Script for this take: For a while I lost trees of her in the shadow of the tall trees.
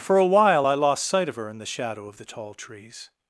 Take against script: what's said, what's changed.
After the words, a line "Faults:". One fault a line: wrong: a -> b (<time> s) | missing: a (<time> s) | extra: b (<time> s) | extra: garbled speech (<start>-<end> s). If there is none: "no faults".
For a while I lost sight of her in the shadow of the tall trees.
Faults:
wrong: trees -> sight (1.0 s)